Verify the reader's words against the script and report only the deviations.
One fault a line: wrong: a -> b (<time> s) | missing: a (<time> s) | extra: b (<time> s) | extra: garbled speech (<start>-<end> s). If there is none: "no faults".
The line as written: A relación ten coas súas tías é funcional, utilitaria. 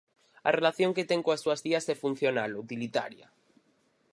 extra: que (0.9 s)